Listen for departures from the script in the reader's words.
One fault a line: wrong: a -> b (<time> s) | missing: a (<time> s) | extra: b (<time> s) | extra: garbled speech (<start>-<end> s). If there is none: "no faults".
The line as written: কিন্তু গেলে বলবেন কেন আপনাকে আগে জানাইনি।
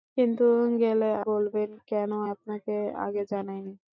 no faults